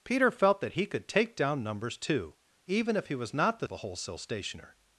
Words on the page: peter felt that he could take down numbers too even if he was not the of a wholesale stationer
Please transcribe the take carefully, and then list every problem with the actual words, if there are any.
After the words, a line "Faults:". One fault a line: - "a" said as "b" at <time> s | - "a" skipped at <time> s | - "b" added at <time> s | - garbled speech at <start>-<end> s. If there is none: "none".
peter felt that he could take down numbers too even if he was not the of a wholesale stationer
Faults:
none